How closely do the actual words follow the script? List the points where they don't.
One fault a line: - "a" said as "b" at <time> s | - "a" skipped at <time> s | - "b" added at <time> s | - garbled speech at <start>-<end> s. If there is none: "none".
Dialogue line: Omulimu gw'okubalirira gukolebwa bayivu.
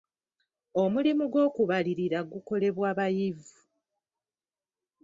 none